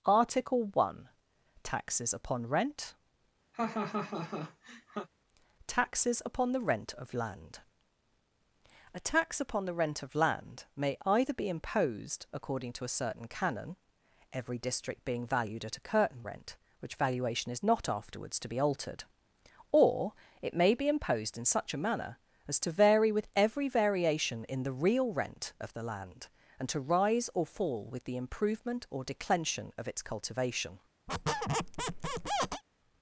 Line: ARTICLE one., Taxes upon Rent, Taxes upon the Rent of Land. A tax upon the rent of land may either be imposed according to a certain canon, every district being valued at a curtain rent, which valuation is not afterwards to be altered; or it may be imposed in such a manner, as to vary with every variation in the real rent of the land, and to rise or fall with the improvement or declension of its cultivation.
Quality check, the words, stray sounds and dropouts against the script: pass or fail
fail